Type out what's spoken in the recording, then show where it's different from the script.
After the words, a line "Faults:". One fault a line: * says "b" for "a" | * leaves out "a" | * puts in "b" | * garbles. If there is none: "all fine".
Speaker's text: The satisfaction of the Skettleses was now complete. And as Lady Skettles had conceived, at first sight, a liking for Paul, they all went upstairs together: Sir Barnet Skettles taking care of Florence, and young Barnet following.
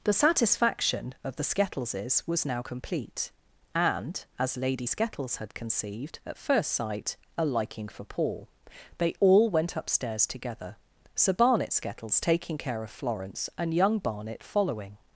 The satisfaction of the Skettleses was now complete. And as Lady Skettles had conceived, at first sight, a liking for Paul, they all went upstairs together: Sir Barnet Skettles taking care of Florence, and young Barnet following.
Faults:
all fine